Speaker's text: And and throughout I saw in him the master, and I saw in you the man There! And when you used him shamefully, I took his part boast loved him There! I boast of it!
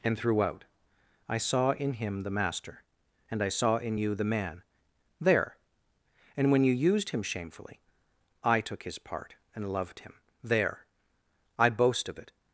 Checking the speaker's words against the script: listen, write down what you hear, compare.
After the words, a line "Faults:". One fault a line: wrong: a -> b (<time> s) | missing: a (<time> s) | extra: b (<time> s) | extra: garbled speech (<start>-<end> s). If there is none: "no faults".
And throughout I saw in him the master, and I saw in you the man There! And when you used him shamefully, I took his part and loved him There! I boast of it!
Faults:
missing: and (0.2 s)
wrong: boast -> and (9.5 s)